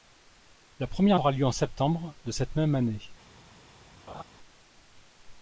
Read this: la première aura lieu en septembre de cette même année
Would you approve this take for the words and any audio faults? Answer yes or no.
no